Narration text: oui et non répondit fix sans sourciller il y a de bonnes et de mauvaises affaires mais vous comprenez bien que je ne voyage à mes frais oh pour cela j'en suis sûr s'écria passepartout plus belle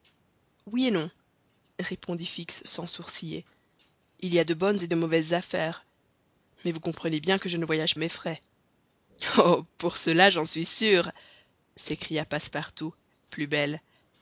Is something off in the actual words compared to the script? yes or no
no